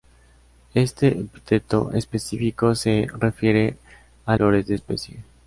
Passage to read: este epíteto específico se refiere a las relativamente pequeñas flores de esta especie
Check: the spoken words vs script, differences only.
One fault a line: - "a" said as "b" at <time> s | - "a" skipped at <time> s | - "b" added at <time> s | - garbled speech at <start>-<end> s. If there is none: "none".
- "las relativamente pequeñas" skipped at 4.3 s
- "esta" skipped at 4.7 s